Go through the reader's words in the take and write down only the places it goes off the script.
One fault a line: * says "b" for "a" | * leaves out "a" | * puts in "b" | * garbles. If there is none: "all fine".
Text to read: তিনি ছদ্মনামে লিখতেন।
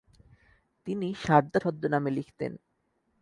* puts in "সারদা"